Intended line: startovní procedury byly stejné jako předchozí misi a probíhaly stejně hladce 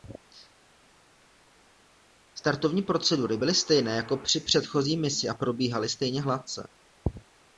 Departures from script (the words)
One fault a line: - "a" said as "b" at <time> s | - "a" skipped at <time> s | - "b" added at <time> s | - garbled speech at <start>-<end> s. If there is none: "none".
- "při" added at 4.2 s